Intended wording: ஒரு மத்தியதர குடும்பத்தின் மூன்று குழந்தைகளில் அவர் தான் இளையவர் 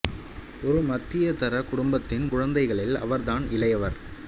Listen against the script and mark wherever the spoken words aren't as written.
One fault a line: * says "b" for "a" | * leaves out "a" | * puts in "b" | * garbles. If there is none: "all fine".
* leaves out "மூன்று"